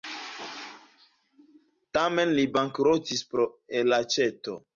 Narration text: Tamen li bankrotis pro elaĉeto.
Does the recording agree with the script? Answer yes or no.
yes